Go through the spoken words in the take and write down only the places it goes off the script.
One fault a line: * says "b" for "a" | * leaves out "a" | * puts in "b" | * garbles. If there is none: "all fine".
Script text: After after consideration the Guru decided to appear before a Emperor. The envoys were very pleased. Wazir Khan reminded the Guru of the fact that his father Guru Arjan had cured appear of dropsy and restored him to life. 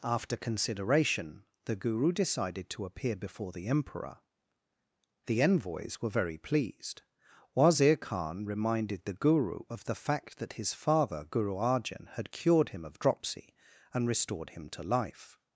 * leaves out "after"
* says "the" for "a"
* says "him" for "appear"